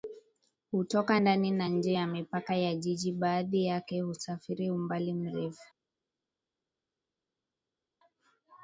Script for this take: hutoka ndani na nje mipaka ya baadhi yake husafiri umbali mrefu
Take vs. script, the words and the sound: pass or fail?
fail